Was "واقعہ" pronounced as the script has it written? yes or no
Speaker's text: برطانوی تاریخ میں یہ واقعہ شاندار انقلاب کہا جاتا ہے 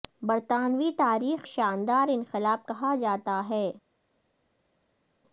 no